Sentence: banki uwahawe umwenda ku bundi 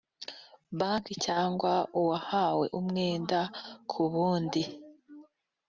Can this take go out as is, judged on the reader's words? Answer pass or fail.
fail